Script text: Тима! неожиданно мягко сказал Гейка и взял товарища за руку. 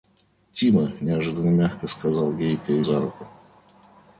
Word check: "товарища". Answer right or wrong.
wrong